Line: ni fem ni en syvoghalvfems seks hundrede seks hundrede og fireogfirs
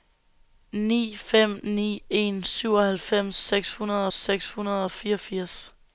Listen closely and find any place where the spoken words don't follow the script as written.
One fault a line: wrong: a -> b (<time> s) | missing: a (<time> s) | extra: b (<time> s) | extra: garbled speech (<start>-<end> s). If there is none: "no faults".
no faults